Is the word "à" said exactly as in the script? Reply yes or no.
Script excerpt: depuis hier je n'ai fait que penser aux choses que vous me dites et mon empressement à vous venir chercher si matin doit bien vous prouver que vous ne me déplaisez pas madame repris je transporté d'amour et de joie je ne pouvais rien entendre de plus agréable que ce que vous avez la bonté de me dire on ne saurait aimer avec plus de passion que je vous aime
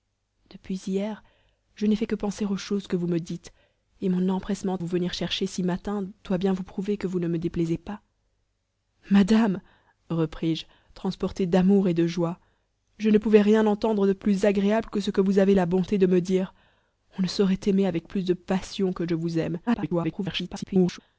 no